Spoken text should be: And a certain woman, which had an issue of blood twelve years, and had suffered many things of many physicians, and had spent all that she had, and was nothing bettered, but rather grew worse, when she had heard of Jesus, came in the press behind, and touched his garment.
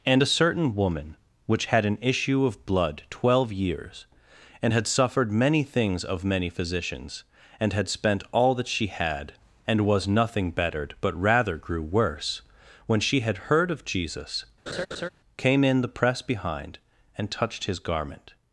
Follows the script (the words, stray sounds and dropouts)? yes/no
no